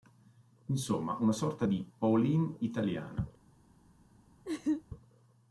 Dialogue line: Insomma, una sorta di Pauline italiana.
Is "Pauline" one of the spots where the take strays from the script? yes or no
no